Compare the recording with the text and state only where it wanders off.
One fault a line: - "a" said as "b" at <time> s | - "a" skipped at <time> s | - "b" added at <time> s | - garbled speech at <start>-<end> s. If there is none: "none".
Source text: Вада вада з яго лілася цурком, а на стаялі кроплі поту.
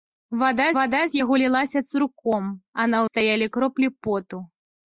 none